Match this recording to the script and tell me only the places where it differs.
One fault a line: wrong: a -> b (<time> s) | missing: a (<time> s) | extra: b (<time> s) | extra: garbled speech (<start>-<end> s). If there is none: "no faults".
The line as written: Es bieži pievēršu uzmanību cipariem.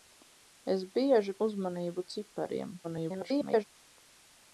missing: pievēršu (1.4 s)
extra: garbled speech (2.8-3.6 s)